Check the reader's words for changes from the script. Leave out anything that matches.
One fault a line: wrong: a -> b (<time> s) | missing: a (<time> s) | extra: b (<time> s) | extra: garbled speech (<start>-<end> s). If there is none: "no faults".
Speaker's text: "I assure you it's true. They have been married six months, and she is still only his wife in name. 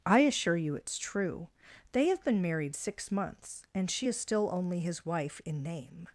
no faults